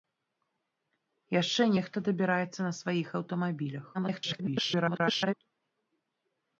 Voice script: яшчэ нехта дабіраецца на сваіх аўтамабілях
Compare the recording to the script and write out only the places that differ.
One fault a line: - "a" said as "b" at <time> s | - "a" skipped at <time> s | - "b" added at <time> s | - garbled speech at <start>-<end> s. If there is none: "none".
- garbled speech at 3.9-5.3 s